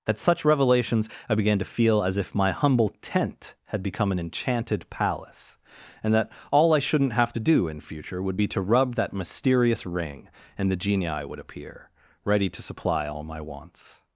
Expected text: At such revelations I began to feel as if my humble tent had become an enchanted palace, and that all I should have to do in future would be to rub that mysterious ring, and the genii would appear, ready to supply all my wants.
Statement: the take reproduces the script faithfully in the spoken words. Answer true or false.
false